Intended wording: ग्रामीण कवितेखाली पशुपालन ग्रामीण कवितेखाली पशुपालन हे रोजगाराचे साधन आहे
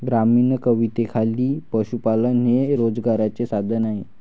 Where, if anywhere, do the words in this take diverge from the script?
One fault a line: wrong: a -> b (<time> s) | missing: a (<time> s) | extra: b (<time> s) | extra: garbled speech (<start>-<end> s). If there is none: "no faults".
missing: ग्रामीण कवितेखाली पशुपालन (2.5 s)